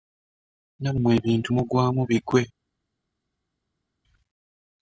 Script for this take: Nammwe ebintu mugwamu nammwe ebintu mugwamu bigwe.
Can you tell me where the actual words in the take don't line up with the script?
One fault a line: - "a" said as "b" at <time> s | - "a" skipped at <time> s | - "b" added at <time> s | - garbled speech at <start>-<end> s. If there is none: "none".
- "nammwe ebintu mugwamu" skipped at 2.0 s